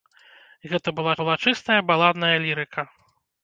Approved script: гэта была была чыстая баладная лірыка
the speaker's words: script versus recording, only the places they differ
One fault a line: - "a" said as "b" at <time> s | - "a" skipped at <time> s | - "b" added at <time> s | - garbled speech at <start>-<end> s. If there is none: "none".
none